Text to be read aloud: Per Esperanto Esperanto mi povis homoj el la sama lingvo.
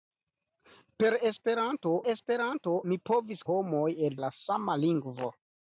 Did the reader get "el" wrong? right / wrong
right